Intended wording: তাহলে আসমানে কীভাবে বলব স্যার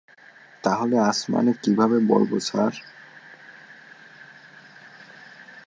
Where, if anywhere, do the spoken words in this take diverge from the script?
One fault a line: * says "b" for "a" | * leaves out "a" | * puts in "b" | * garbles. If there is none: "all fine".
all fine